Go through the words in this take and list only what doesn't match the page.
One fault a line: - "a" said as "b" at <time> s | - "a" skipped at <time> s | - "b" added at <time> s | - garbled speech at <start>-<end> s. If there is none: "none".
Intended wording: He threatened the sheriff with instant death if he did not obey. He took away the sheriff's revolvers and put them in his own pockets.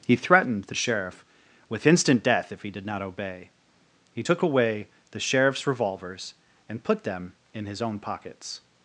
none